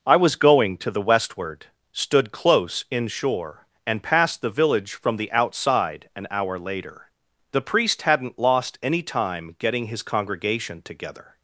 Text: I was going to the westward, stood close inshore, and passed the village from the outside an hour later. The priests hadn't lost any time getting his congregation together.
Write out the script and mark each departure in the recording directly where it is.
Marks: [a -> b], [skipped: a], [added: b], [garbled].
I was going to the westward, stood close inshore, and passed the village from the outside an hour later. The [priests -> priest] hadn't lost any time getting his congregation together.